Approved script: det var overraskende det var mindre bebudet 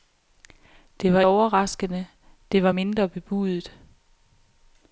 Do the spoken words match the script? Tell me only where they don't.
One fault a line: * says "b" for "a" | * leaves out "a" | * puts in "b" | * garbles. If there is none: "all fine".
all fine